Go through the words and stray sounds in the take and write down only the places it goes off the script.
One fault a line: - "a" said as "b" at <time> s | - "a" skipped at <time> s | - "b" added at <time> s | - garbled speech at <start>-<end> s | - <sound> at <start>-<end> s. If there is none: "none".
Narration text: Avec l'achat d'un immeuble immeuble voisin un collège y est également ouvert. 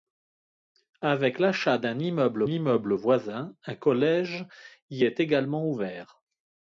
none